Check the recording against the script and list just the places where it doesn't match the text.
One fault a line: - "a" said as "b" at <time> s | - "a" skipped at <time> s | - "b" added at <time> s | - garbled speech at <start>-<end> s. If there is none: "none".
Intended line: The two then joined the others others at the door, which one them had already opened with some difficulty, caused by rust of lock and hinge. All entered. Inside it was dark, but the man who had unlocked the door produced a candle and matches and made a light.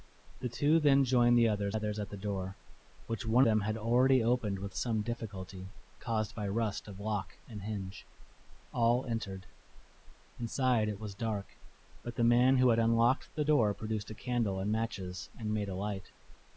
none